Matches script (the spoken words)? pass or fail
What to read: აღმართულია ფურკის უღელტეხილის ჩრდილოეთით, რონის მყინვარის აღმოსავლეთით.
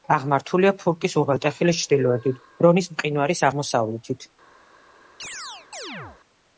pass